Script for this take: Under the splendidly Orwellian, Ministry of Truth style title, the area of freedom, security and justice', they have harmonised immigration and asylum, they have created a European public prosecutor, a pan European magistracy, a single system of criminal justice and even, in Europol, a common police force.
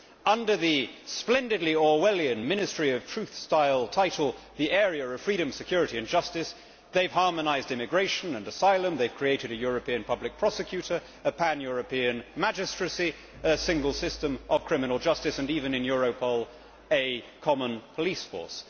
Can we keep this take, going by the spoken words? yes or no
yes